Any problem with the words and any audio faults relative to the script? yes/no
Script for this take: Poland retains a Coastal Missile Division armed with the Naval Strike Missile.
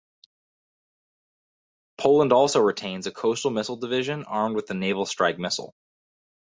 yes